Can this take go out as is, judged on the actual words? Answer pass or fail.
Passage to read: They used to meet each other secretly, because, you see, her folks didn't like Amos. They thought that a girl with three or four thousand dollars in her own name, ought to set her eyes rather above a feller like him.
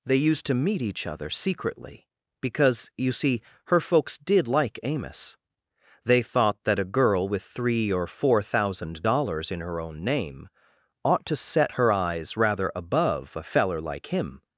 fail